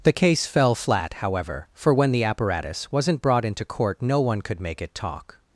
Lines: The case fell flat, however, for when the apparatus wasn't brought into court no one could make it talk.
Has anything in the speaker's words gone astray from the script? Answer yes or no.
no